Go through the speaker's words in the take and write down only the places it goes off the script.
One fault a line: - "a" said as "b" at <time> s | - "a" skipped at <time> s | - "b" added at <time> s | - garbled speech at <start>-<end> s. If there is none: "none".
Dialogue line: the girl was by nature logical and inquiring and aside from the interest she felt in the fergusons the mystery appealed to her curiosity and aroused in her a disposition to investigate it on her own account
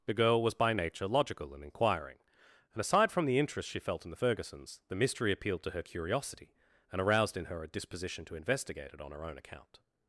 none